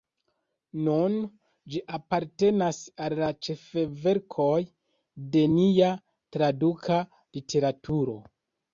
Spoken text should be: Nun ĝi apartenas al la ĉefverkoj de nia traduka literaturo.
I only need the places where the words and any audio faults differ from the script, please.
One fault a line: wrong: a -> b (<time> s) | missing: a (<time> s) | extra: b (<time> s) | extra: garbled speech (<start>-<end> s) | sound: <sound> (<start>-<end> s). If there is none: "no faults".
no faults